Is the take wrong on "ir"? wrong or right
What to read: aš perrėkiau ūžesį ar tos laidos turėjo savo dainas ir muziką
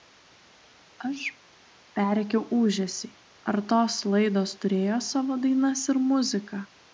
right